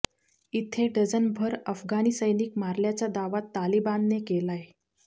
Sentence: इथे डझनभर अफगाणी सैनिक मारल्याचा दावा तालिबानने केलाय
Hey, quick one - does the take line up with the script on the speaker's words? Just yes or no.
yes